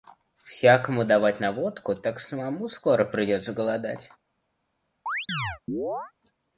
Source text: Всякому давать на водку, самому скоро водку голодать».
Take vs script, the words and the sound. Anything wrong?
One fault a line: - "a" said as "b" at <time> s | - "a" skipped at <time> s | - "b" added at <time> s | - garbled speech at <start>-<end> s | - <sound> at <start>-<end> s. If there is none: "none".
- "так" added at 1.9 s
- "водку" said as "придется" at 3.0 s
- chirp at 5.1-6.1 s